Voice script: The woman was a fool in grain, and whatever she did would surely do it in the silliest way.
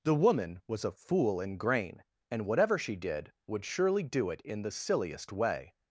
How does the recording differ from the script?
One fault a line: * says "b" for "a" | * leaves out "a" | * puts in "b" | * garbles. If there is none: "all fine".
all fine